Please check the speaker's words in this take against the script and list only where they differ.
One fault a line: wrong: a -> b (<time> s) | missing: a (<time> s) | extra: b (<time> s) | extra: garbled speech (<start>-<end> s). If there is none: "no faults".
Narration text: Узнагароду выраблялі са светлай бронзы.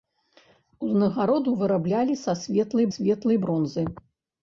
extra: светлай (3.0 s)